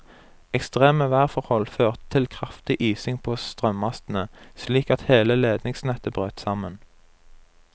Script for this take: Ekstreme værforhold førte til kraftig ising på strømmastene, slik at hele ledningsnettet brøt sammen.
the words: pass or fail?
pass